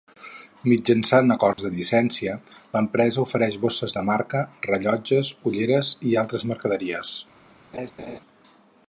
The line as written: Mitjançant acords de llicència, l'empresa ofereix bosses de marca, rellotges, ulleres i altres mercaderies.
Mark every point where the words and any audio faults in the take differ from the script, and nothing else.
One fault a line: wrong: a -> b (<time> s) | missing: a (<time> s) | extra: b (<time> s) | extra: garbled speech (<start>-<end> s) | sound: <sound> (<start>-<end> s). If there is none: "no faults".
sound: dropout (1.5-1.6 s)
sound: laugh (7.7-8.2 s)